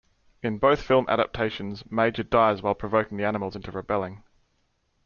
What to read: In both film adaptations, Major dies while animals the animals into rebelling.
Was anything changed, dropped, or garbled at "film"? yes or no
no